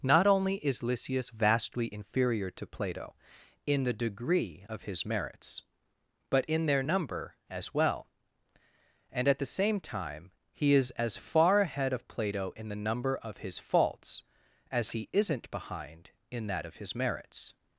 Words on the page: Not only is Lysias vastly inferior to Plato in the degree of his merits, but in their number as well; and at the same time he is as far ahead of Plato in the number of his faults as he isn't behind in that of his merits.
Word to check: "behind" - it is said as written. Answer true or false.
true